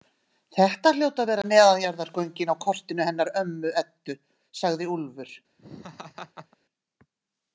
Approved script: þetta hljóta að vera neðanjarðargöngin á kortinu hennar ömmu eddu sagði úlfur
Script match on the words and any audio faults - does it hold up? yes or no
no